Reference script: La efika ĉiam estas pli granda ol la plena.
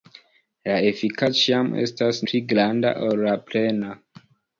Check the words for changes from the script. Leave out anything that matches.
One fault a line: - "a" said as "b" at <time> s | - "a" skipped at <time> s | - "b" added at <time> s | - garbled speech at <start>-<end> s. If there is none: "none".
none